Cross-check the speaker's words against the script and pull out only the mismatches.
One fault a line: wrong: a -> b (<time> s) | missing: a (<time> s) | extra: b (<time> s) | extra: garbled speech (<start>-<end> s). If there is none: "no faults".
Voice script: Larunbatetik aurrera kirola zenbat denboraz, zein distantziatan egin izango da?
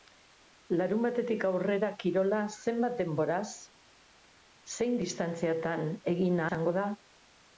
no faults